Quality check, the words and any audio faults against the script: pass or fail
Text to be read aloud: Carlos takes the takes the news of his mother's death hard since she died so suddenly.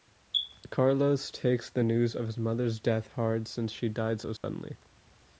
fail